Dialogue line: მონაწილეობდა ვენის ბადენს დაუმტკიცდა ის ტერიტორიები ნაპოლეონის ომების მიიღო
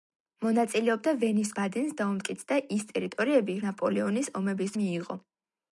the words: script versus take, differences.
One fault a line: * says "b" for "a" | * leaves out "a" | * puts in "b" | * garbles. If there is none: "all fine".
all fine